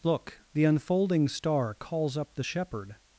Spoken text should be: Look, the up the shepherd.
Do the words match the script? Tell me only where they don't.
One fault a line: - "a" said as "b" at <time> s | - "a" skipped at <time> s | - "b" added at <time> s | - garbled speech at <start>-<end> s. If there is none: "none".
- "unfolding star calls" added at 0.6 s